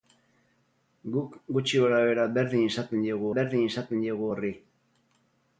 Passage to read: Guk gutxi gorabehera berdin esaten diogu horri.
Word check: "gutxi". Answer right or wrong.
right